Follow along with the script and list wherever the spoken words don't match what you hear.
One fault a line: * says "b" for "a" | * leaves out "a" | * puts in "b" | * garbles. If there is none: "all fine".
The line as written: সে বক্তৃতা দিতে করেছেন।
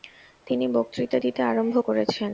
* says "তিনি" for "সে"
* puts in "আরম্ভ"